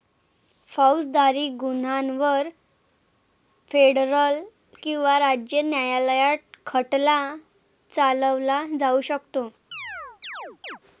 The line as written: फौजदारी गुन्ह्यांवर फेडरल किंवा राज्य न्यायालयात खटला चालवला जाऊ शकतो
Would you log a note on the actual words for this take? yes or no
no